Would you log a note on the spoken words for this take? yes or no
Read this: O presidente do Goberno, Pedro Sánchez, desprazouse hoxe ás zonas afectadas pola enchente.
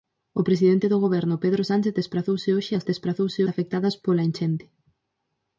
yes